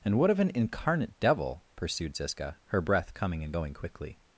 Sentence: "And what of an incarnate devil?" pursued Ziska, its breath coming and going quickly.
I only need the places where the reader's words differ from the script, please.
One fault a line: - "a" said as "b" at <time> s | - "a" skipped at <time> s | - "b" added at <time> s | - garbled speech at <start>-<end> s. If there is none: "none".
- "its" said as "her" at 2.6 s